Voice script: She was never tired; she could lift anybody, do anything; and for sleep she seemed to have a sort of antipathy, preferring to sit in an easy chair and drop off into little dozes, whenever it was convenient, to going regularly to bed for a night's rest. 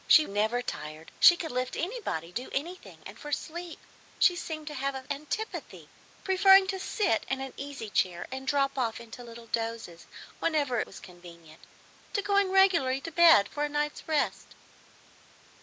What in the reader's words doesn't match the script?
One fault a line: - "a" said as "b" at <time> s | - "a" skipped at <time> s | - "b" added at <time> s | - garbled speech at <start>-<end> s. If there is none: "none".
- "was" skipped at 0.2 s
- "sort of" skipped at 5.1 s
- "it" skipped at 10.8 s